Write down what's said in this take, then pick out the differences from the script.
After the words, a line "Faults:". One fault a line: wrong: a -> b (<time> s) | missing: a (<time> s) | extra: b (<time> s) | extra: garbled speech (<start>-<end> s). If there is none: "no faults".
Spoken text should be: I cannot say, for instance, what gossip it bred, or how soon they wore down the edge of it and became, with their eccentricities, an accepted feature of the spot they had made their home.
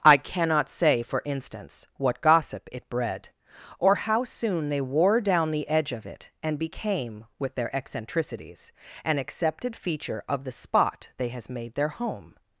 I cannot say, for instance, what gossip it bred, or how soon they wore down the edge of it and became, with their eccentricities, an accepted feature of the spot they has made their home.
Faults:
wrong: had -> has (11.3 s)